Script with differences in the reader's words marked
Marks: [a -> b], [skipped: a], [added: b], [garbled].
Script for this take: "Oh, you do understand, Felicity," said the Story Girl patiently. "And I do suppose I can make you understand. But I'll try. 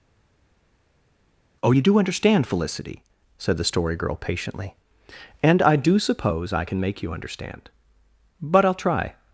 "Oh, you do understand, Felicity," said the Story Girl patiently. "And I do suppose I can make you understand. But I'll try.